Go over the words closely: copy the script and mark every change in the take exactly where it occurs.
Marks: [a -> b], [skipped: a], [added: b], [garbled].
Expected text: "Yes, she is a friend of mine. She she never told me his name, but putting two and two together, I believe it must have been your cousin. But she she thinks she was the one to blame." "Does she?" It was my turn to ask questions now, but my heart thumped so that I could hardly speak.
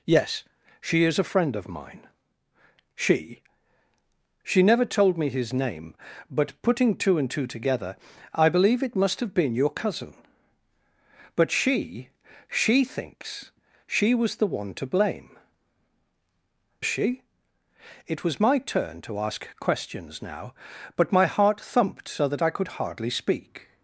"Yes, she is a friend of mine. She she never told me his name, but putting two and two together, I believe it must have been your cousin. But she she thinks she was the one to blame." [skipped: "Does] she?" It was my turn to ask questions now, but my heart thumped so that I could hardly speak.